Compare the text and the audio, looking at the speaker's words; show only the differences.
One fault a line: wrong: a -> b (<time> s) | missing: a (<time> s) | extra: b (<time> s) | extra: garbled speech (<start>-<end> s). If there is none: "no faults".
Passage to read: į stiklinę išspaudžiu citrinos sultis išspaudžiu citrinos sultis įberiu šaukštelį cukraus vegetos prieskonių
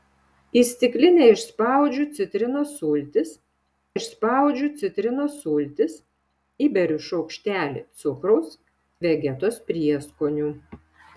no faults